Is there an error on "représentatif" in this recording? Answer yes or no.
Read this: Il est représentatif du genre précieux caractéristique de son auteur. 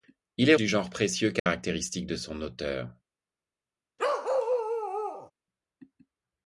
yes